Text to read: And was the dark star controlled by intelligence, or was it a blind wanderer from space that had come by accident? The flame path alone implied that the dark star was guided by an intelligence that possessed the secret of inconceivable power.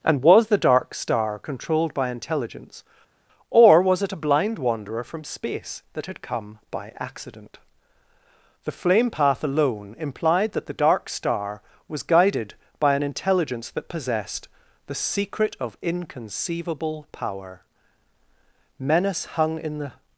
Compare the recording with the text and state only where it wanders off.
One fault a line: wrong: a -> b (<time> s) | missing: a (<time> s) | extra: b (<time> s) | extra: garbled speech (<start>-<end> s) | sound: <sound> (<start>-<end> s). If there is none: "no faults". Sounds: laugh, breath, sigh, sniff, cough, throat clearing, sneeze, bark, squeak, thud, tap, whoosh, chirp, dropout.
extra: Menace hung in the (18.8 s)